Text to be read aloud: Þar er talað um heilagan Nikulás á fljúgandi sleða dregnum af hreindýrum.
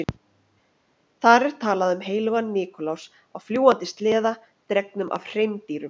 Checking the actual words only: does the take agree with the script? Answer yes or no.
yes